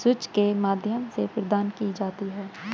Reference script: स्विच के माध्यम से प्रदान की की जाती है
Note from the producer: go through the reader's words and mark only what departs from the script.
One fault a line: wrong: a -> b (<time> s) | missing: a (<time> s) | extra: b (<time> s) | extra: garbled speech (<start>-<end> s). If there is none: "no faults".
missing: की (1.9 s)